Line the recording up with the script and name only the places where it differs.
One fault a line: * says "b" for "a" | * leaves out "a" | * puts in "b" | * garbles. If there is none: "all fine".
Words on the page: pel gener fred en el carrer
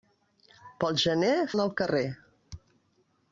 * leaves out "fred"